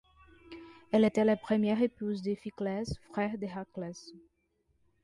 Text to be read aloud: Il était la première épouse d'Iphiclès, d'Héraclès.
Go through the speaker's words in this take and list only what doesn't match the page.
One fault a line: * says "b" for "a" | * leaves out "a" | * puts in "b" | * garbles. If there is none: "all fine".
* says "Elle" for "Il"
* puts in "frère"